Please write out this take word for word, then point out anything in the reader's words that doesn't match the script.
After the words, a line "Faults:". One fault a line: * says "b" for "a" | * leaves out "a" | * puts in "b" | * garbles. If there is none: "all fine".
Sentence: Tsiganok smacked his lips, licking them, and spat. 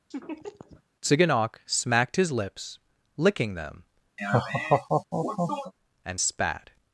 Tsiganok smacked his lips, licking them, and spat.
Faults:
all fine